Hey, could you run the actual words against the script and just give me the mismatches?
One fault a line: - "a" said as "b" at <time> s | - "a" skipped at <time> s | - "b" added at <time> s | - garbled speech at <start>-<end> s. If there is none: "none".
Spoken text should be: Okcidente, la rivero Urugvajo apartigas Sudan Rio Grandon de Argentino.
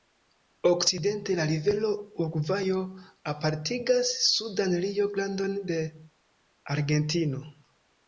none